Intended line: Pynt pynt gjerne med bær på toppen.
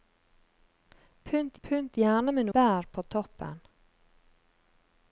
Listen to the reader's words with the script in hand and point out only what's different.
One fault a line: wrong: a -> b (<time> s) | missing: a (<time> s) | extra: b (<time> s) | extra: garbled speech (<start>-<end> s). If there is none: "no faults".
no faults